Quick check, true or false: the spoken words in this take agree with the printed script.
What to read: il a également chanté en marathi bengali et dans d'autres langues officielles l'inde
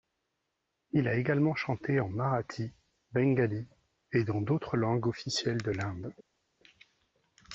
false